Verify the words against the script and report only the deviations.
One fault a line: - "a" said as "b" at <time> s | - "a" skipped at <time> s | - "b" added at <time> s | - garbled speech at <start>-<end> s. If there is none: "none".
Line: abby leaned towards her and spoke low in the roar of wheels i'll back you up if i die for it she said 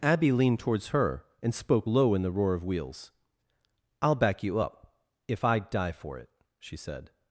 none